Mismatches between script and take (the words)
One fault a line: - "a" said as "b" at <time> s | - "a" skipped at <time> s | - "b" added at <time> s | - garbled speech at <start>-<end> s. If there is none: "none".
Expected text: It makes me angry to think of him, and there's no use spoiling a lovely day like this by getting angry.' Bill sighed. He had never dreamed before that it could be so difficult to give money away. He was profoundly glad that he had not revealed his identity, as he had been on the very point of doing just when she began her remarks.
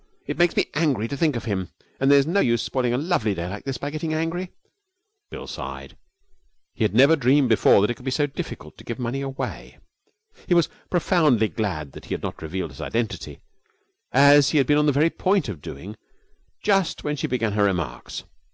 none